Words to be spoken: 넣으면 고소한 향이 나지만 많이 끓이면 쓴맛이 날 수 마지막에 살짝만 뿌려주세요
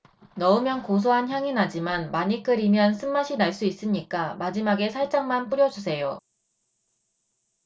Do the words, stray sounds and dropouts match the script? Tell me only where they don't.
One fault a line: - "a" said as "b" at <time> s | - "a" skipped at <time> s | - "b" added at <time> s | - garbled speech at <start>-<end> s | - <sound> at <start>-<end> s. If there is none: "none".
- "있으니까" added at 3.6 s